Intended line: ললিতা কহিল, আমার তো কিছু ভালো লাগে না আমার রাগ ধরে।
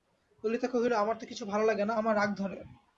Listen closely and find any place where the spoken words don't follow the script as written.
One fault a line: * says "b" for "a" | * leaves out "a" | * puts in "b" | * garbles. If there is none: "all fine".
all fine